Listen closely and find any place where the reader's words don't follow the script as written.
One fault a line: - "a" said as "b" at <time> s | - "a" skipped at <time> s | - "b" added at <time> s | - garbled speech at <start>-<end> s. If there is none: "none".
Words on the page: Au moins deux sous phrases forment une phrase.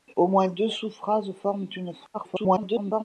- garbled speech at 2.1-3.0 s